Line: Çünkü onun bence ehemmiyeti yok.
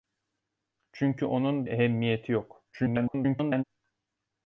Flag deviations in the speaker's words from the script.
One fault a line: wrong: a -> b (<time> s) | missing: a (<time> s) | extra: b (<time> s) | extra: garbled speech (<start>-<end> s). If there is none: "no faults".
missing: bence (1.7 s)
extra: garbled speech (2.7-3.6 s)